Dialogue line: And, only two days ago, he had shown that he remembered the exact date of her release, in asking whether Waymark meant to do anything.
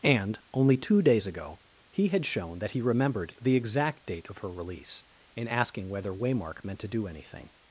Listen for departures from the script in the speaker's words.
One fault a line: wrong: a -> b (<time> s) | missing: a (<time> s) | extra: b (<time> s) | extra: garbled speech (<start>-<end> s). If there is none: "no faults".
no faults